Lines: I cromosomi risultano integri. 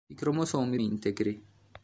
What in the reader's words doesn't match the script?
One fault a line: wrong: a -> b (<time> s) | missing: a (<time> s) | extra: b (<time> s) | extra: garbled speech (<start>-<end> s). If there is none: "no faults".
missing: risultano (0.8 s)